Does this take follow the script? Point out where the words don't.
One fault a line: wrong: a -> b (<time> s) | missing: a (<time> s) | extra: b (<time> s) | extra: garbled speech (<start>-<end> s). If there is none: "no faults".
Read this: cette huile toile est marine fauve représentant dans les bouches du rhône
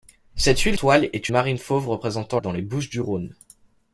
no faults